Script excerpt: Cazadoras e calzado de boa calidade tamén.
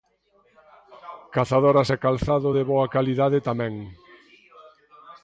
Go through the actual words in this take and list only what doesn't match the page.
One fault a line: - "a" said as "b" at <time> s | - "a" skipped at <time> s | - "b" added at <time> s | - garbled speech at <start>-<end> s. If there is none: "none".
none